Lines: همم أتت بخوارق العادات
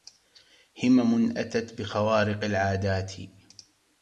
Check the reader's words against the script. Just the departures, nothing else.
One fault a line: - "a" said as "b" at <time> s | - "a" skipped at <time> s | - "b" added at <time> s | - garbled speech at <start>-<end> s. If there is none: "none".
none